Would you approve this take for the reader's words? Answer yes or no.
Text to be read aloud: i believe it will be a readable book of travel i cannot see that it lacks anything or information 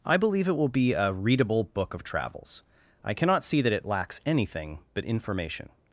no